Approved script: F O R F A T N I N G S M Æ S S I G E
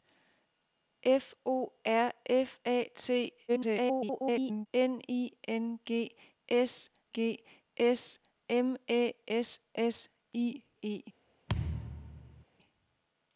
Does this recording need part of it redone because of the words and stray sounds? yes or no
yes